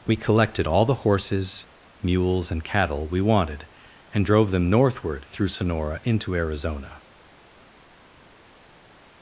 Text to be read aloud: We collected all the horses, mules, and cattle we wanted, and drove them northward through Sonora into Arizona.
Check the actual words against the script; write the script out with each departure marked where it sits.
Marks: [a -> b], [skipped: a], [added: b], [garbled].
We collected all the horses, mules, and cattle we wanted, and drove them northward through Sonora into Arizona.